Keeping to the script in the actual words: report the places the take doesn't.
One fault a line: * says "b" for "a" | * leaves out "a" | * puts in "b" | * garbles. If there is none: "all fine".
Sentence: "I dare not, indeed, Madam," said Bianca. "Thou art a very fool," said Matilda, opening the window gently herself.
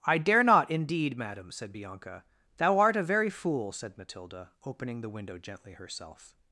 all fine